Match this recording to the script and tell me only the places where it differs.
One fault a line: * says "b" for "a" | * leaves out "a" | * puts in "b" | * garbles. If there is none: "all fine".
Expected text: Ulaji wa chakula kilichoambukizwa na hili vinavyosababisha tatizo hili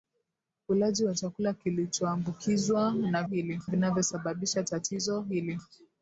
all fine